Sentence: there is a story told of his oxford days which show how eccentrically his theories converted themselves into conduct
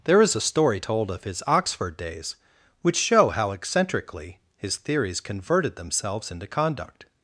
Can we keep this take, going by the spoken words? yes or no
yes